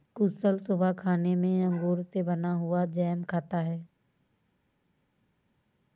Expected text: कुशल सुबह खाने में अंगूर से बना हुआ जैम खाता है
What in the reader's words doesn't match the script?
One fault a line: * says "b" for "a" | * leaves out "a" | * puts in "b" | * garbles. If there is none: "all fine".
all fine